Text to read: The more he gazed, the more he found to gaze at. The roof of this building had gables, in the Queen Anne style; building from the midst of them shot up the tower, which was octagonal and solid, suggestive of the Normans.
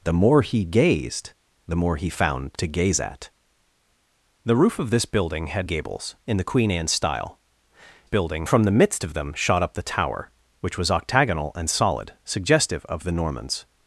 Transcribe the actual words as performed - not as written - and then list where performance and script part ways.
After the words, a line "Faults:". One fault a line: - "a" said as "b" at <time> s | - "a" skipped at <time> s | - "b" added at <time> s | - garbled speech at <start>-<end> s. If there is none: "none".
The more he gazed, the more he found to gaze at. The roof of this building had gables, in the Queen Anne style; building from the midst of them shot up the tower, which was octagonal and solid, suggestive of the Normans.
Faults:
none